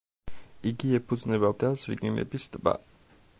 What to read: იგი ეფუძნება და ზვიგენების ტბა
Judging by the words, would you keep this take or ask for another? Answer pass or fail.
pass